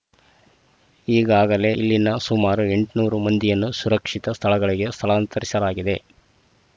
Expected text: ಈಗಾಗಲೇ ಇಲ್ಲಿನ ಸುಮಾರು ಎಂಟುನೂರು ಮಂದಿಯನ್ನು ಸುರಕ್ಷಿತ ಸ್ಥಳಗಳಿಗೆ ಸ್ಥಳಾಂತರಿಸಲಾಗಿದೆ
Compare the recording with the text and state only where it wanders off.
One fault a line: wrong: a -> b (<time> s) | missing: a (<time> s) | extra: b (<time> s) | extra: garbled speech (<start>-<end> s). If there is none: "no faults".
no faults